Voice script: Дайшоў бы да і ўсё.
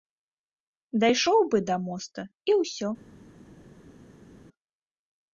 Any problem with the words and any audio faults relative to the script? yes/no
yes